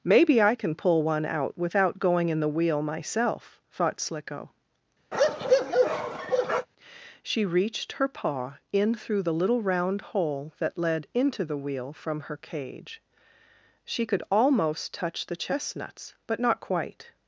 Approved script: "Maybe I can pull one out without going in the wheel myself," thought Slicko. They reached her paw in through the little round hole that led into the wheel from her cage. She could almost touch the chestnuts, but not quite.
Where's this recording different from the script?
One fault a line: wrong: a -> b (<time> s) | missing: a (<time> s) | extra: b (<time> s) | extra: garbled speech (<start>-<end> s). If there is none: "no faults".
wrong: They -> She (7.2 s)